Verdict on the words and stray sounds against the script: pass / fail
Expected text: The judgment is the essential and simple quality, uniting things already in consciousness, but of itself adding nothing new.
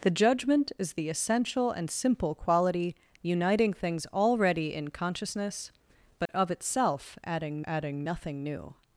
fail